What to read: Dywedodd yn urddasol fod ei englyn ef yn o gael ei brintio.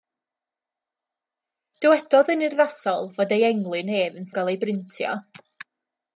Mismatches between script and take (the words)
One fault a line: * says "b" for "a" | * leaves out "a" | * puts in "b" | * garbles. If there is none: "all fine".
all fine